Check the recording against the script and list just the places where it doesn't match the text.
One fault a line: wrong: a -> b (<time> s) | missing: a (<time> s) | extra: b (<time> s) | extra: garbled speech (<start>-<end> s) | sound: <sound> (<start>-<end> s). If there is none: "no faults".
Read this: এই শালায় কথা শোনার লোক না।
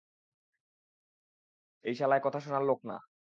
no faults